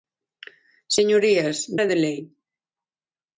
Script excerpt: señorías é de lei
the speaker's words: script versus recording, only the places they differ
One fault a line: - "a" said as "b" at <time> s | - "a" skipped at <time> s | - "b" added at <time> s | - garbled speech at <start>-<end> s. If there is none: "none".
none